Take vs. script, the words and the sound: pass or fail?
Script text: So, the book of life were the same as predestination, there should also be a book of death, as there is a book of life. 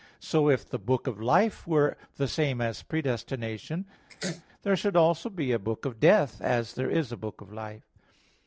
fail